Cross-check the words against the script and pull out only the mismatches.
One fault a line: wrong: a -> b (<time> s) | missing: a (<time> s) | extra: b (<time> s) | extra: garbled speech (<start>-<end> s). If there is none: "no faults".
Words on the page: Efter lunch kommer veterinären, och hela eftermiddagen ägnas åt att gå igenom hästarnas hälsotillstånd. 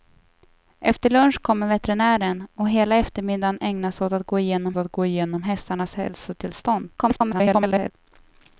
extra: att gå igenom (4.8 s)
extra: garbled speech (7.0-7.9 s)